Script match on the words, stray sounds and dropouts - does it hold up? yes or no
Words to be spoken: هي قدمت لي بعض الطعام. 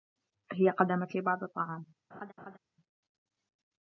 no